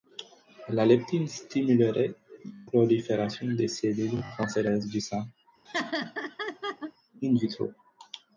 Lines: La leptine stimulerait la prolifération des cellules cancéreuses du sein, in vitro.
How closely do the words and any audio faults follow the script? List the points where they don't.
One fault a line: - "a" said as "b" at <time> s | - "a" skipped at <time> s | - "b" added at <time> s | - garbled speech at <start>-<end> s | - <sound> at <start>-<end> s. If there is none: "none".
- "la" skipped at 2.1 s
- laugh at 5.7-6.9 s